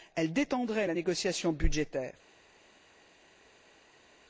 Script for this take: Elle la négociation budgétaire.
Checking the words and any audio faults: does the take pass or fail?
fail